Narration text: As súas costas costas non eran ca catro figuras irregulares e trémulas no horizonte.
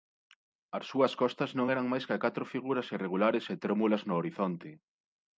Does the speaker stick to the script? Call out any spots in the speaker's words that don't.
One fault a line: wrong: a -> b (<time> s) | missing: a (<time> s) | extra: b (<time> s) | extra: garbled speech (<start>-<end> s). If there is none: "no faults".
missing: costas (1.5 s)
extra: máis (1.9 s)